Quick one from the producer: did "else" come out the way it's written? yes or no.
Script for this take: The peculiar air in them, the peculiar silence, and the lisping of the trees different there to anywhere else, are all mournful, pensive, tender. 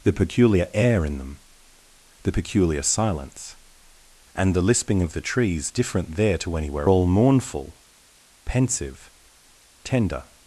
no